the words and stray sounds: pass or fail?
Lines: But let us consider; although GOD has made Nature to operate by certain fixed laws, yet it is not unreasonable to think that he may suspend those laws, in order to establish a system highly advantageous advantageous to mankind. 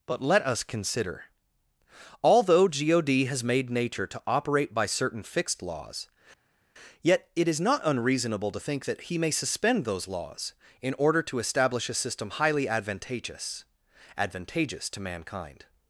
pass